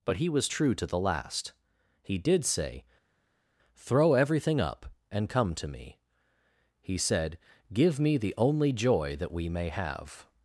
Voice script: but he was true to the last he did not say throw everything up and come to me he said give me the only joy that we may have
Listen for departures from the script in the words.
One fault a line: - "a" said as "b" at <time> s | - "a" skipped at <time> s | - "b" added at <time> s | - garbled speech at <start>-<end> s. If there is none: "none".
- "not" skipped at 2.4 s